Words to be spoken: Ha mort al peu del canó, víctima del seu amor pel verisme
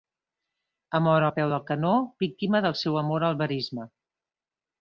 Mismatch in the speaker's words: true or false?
true